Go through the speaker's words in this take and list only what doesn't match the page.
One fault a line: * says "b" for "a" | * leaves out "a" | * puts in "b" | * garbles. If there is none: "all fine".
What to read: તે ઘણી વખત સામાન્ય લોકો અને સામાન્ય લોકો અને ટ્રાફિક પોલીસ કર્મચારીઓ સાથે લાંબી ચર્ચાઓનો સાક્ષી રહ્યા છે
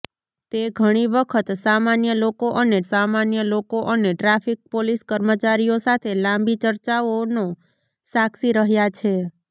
all fine